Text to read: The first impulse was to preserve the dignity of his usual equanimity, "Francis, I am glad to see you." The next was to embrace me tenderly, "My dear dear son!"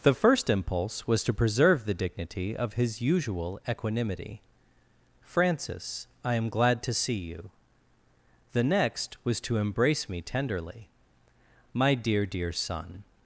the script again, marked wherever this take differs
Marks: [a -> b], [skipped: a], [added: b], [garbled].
The first impulse was to preserve the dignity of his usual equanimity, "Francis, I am glad to see you." The next was to embrace me tenderly, "My dear dear son!"